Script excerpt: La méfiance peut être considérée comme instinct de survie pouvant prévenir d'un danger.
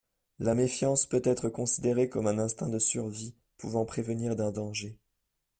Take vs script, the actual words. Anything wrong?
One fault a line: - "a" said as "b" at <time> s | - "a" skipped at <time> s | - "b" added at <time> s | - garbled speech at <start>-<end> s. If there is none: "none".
- "un" added at 2.3 s